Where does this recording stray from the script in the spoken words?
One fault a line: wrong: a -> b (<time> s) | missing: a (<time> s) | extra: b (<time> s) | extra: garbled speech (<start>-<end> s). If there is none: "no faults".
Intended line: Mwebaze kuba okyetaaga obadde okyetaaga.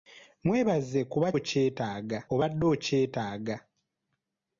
no faults